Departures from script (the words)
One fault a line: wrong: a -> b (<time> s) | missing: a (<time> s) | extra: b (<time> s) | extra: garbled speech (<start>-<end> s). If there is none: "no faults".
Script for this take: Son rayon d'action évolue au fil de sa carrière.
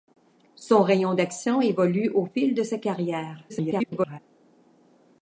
extra: garbled speech (3.5-4.2 s)